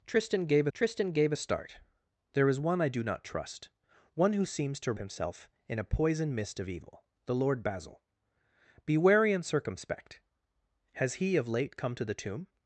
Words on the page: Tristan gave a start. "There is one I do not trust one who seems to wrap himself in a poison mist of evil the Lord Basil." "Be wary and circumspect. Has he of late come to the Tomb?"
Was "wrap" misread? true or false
true